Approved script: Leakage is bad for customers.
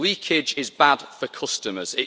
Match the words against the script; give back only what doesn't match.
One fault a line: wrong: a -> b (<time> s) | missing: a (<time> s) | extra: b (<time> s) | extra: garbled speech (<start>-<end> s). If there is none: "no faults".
no faults